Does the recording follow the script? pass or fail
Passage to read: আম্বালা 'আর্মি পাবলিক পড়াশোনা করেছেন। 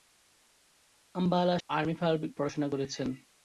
pass